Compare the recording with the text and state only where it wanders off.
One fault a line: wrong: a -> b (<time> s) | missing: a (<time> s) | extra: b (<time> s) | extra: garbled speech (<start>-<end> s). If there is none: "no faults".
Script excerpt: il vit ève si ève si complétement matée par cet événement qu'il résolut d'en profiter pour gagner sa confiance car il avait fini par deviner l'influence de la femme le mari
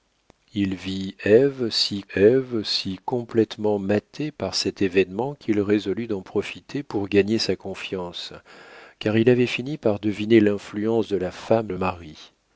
no faults